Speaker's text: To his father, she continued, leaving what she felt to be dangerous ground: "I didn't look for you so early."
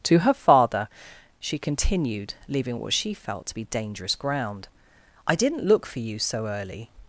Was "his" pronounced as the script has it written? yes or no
no